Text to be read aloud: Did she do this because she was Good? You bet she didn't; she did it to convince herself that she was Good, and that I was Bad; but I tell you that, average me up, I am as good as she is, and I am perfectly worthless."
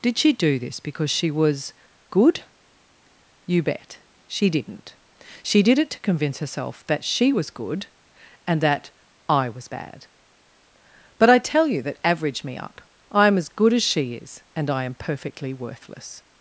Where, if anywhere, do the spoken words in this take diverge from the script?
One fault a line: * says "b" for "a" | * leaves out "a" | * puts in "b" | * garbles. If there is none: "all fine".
all fine